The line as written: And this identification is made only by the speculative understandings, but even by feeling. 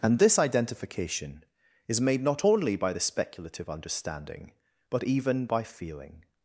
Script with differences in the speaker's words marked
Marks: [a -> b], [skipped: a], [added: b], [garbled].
And this identification is made [added: not] only by the speculative [understandings, -> understanding] but even by feeling.